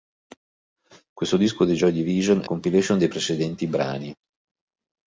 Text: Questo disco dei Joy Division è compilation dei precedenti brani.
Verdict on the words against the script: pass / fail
pass